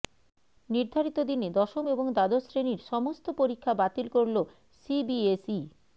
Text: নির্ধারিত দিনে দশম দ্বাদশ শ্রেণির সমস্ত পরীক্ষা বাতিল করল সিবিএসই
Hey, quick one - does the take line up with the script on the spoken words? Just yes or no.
no